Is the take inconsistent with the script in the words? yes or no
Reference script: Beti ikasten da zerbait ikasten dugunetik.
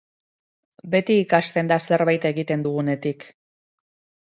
yes